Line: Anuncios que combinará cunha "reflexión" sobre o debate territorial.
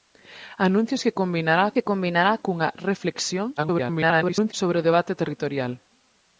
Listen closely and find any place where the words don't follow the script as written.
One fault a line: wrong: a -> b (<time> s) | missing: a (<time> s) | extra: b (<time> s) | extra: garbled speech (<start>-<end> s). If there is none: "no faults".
extra: que combinará (1.8 s)
extra: garbled speech (3.6-4.5 s)